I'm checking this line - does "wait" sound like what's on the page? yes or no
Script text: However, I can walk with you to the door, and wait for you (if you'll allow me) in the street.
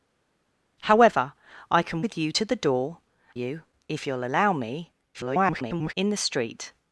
no